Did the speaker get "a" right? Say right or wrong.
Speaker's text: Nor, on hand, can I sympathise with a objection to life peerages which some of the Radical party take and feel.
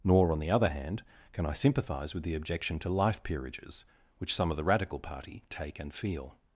wrong